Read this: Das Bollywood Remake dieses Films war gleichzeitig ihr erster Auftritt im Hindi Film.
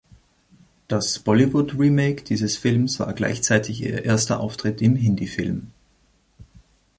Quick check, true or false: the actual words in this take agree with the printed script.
true